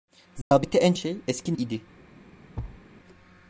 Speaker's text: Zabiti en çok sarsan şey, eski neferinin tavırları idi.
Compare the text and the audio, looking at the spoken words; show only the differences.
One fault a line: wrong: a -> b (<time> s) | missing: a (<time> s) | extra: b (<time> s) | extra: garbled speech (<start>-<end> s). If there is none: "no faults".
missing: çok sarsan (0.9 s)
missing: neferinin tavırları (1.5 s)